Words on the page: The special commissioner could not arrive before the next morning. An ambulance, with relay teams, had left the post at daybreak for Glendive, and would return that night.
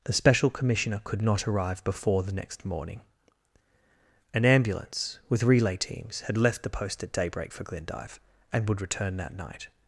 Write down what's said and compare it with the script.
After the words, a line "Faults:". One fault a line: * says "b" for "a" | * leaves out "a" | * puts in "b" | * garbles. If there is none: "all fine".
The special commissioner could not arrive before the next morning. An ambulance, with relay teams, had left the post at daybreak for Glendive, and would return that night.
Faults:
all fine